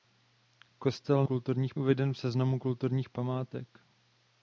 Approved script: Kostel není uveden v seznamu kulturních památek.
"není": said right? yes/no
no